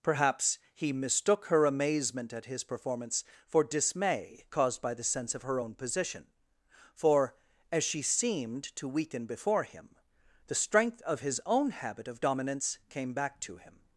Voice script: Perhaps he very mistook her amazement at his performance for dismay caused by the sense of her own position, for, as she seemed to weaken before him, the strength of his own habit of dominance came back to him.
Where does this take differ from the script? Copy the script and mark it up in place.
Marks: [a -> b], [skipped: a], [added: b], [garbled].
Perhaps he [skipped: very] mistook her amazement at his performance for dismay caused by the sense of her own position, for, as she seemed to weaken before him, the strength of his own habit of dominance came back to him.